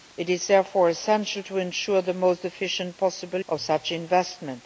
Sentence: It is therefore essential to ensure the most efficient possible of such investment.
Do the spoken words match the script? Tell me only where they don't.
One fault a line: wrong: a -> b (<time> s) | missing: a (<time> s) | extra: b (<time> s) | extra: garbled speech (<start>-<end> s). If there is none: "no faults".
no faults